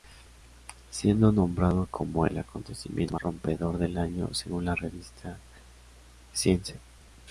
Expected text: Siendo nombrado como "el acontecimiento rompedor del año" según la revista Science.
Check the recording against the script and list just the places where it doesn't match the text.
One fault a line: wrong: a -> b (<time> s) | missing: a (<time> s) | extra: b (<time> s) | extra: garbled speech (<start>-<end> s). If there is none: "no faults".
no faults